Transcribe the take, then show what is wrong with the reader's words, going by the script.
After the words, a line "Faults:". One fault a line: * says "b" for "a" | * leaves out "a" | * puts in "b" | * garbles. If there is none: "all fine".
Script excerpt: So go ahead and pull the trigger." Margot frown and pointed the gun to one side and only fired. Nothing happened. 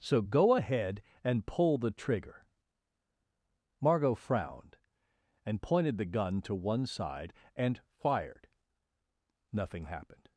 So go ahead and pull the trigger." Margot frowned and pointed the gun to one side and fired. Nothing happened.
Faults:
* says "frowned" for "frown"
* leaves out "only"